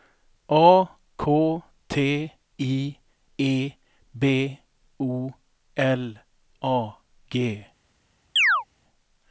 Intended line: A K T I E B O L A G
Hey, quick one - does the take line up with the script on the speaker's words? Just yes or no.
yes